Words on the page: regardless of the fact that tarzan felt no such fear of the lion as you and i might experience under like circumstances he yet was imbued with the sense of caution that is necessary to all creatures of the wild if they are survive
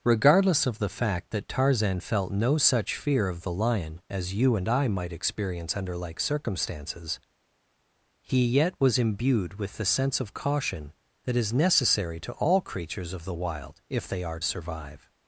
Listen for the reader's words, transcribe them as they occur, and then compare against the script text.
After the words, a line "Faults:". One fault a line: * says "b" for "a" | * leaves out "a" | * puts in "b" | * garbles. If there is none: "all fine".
regardless of the fact that tarzan felt no such fear of the lion as you and i might experience under like circumstances he yet was imbued with the sense of caution that is necessary to all creatures of the wild if they are survive
Faults:
all fine